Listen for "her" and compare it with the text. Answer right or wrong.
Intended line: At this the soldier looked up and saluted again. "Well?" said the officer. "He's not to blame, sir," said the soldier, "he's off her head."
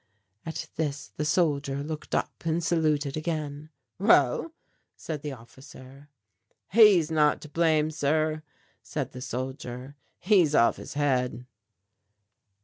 wrong